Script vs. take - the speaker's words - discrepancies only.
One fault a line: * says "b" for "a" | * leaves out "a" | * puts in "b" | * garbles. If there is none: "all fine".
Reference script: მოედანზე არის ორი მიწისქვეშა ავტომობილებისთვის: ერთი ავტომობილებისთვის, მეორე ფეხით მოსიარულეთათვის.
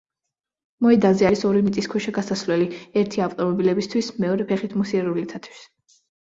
* says "გასასვლელი" for "ავტომობილებისთვის"